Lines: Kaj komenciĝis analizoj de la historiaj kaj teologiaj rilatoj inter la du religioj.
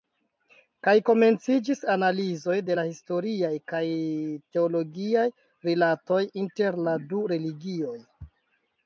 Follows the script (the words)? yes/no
yes